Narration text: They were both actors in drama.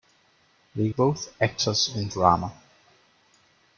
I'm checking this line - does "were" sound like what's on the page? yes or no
no